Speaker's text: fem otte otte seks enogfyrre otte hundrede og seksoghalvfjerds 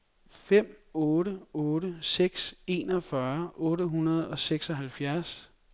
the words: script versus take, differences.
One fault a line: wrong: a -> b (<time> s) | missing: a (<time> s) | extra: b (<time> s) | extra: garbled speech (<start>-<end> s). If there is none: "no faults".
no faults